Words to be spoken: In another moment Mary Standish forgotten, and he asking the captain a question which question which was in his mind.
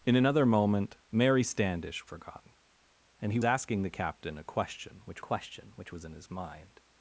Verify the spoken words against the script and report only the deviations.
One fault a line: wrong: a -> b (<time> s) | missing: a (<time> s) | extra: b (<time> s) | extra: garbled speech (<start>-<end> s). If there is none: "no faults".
no faults